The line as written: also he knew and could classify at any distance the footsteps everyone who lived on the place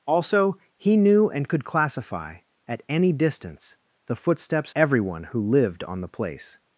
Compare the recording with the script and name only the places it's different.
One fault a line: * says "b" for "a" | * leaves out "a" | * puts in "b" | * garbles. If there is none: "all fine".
all fine